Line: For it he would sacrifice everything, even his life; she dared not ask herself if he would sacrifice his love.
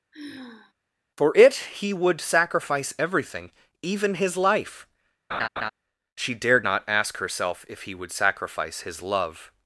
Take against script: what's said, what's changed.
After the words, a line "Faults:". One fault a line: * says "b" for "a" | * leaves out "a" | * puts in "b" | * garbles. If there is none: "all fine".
For it he would sacrifice everything, even his life; she dared not ask herself if he would sacrifice his love.
Faults:
all fine